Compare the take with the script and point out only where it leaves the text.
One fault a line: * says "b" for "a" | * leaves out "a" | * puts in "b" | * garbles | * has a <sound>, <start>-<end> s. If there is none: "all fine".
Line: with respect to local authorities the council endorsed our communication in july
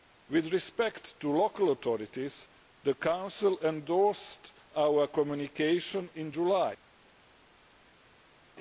all fine